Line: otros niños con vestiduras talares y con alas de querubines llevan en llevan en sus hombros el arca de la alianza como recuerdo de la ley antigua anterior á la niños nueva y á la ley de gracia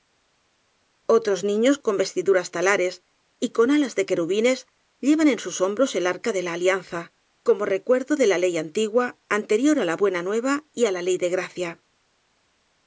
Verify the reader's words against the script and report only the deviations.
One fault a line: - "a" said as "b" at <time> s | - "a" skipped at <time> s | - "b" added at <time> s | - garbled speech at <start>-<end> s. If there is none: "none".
- "llevan en" skipped at 5.4 s
- "niños" said as "buena" at 10.0 s